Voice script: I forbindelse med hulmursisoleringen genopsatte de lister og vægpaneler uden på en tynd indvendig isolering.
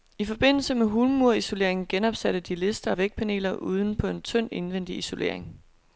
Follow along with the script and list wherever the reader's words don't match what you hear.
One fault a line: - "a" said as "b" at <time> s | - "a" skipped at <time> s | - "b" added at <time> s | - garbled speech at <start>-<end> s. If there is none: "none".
none